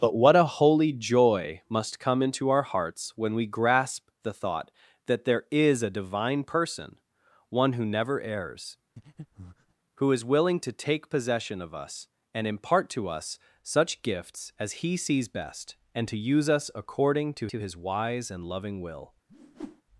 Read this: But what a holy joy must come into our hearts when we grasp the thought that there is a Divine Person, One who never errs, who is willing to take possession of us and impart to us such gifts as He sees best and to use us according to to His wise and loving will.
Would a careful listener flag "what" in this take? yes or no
no